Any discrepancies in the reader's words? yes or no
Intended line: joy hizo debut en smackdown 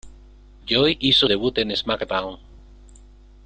no